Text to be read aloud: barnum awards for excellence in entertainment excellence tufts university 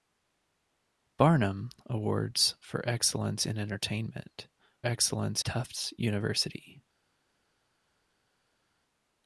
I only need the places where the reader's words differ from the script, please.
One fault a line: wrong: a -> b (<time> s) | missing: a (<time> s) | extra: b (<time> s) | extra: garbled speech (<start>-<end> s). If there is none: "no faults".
no faults